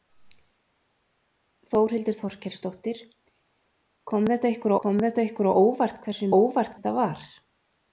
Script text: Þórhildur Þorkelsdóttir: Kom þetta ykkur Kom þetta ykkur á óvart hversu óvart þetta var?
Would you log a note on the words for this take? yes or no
no